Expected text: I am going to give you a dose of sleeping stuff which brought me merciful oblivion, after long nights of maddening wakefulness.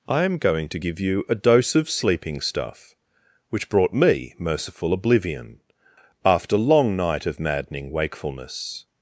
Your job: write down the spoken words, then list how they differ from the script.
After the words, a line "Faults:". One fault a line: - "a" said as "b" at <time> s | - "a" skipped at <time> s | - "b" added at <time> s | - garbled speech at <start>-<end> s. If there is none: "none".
I am going to give you a dose of sleeping stuff which brought me merciful oblivion, after long night of maddening wakefulness.
Faults:
- "nights" said as "night" at 6.9 s